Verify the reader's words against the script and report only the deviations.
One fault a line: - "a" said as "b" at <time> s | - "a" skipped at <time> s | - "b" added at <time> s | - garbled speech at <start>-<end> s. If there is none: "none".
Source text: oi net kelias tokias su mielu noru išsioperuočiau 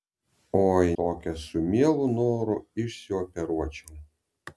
- "net kelias" skipped at 0.9 s